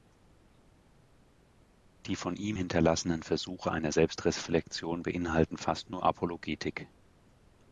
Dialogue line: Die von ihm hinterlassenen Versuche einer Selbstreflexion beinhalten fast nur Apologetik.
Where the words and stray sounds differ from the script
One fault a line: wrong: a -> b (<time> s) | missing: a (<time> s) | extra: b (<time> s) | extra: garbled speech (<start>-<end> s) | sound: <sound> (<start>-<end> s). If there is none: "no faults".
no faults